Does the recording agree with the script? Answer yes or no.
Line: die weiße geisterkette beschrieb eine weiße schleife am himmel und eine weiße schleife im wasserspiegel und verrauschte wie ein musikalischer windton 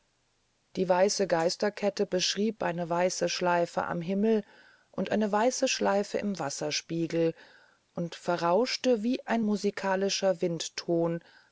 yes